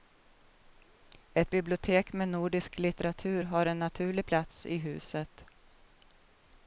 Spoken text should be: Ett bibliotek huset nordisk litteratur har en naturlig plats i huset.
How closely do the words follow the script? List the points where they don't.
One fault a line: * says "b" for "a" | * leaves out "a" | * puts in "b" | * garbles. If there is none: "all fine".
* says "med" for "huset"